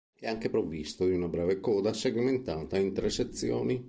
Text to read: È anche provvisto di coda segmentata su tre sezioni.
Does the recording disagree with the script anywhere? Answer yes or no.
yes